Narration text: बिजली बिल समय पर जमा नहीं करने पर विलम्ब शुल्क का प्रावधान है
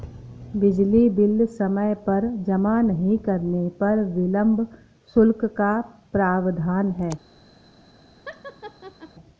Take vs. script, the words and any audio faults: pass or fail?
fail